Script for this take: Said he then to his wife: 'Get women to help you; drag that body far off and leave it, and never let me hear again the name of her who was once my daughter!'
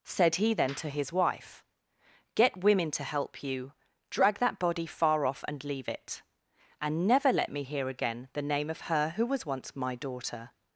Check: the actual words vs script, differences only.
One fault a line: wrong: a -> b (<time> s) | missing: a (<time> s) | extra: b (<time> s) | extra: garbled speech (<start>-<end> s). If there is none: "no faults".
no faults